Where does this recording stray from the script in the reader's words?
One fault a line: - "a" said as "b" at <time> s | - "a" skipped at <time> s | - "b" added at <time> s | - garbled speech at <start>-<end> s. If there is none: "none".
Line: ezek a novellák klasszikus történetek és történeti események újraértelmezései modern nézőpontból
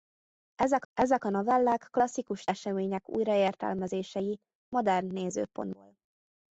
- "ezek" added at 0.9 s
- "történetek és történeti" skipped at 2.5 s